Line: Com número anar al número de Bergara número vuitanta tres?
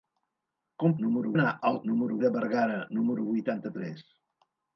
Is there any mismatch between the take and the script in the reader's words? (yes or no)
no